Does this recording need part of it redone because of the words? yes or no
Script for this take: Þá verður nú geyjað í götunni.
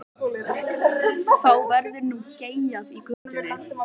no